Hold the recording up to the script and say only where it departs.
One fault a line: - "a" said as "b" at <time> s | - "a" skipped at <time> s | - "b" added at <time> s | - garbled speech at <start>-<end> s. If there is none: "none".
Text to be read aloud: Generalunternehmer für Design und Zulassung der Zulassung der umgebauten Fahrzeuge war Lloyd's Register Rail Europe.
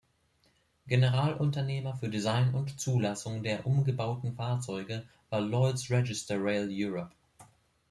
- "Zulassung der" skipped at 3.7 s